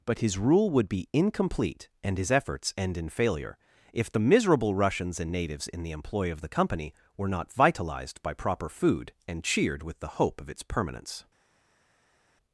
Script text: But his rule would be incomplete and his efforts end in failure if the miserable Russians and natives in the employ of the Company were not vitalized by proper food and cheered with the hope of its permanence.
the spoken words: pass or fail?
pass